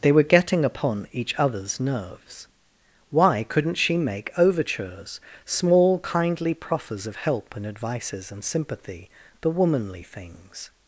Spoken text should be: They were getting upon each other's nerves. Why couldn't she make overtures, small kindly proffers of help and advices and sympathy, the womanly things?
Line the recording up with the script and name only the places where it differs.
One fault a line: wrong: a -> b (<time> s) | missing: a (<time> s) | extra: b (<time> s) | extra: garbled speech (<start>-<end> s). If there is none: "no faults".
no faults